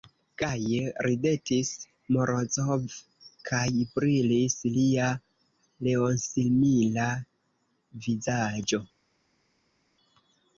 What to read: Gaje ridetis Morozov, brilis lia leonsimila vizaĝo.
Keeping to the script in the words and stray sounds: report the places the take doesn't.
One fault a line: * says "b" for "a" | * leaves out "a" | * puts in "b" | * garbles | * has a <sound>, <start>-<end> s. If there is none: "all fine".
* puts in "kaj"